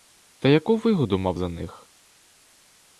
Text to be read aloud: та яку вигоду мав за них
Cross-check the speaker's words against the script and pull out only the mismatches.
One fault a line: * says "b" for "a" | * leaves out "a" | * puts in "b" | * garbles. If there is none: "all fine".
all fine